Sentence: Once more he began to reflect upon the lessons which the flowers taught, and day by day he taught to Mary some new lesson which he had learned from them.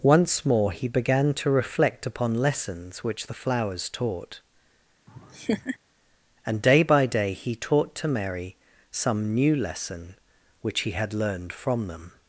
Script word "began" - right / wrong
right